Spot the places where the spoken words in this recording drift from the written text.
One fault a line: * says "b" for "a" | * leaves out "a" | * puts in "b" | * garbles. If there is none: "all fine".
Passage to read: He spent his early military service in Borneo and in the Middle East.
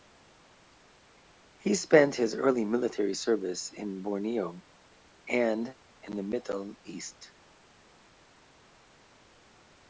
all fine